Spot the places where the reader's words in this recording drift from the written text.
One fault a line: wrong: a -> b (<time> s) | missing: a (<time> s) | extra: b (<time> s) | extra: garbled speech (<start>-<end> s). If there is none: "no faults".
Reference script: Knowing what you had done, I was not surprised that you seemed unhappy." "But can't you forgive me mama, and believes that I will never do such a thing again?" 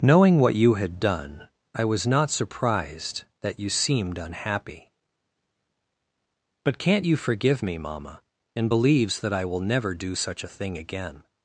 no faults